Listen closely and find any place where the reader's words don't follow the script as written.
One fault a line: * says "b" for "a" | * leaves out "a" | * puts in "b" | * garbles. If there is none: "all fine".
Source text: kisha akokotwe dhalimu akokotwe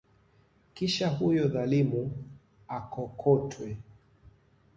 * says "huyo" for "akokotwe"